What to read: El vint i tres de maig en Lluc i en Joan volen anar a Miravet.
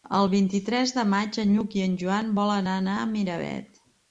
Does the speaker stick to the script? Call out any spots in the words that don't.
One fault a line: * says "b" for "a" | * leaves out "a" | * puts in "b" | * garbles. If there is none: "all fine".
all fine